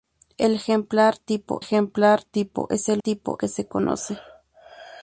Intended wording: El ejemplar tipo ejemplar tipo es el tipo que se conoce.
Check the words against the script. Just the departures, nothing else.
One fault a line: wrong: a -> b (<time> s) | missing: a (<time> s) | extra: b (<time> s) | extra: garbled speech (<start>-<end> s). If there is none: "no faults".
no faults